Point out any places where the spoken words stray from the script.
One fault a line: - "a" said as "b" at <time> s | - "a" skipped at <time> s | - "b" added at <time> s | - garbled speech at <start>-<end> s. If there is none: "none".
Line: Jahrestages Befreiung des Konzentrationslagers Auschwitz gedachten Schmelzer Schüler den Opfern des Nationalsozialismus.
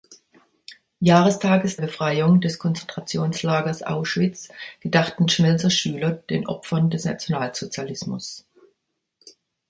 none